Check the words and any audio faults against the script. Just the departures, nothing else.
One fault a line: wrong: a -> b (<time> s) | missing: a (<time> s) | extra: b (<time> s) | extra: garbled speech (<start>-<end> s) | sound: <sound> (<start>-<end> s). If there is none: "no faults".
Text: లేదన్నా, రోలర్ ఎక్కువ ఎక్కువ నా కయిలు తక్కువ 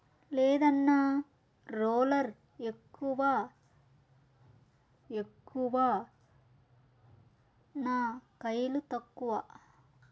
no faults